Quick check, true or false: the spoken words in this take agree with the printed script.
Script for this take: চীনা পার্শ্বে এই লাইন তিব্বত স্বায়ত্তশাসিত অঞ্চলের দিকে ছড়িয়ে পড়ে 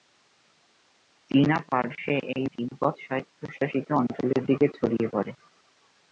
false